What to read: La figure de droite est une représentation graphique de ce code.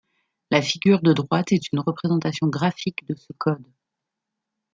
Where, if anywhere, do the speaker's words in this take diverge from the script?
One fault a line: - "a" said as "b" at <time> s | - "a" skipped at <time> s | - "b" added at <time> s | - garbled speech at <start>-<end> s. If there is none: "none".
none